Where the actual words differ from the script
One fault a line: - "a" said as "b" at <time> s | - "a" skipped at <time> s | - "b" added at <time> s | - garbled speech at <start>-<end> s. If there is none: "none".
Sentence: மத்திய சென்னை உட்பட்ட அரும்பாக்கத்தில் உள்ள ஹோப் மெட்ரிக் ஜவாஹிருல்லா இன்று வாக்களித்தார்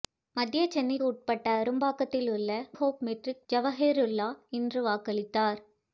none